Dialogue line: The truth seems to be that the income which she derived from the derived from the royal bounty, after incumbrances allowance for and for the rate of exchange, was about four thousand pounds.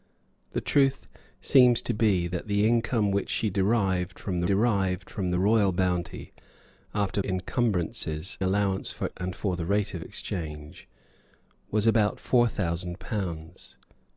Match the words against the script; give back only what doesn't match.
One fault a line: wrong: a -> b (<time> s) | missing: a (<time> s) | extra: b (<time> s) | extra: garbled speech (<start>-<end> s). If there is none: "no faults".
no faults